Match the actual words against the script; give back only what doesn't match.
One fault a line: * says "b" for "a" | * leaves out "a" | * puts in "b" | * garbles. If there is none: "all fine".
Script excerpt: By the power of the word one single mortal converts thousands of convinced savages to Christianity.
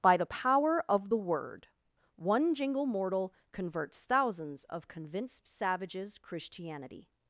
* says "jingle" for "single"
* leaves out "to"